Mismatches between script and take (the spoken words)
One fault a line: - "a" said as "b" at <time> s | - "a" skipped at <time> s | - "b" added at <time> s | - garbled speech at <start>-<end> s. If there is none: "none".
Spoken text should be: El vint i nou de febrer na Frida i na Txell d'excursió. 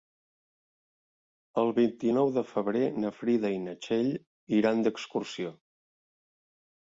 - "iran" added at 4.6 s